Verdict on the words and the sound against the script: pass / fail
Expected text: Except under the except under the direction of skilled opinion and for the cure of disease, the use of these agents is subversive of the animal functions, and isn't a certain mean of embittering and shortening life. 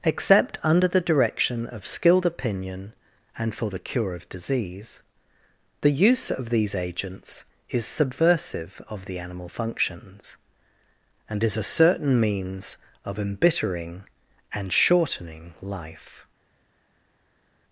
fail